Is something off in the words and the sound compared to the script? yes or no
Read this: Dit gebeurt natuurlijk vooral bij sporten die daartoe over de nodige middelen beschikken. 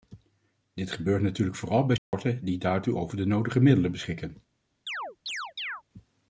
yes